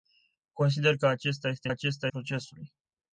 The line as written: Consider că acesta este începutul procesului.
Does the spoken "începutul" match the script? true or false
false